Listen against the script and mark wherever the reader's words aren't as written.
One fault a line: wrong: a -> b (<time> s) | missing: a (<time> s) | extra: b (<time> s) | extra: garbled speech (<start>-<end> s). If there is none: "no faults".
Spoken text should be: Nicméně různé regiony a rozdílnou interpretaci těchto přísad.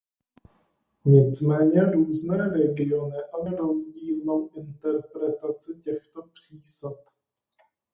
no faults